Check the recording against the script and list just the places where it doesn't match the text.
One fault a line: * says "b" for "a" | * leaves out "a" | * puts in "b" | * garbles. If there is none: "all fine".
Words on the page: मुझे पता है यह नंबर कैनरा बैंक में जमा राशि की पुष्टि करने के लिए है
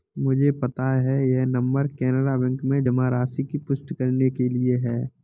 all fine